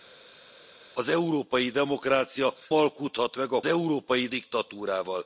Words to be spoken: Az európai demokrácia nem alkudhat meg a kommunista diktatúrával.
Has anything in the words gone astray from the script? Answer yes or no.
yes